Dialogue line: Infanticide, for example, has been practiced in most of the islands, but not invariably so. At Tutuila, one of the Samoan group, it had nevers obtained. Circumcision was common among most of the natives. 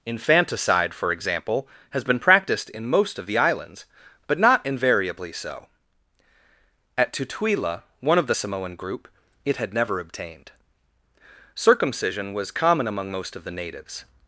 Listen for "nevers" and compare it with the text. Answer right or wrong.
wrong